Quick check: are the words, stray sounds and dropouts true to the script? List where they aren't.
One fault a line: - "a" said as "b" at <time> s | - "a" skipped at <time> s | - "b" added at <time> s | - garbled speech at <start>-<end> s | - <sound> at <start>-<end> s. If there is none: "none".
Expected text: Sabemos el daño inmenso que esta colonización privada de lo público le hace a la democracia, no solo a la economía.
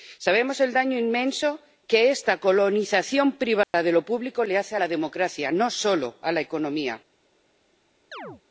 - dropout at 3.6-3.7 s
- chirp at 8.1-8.4 s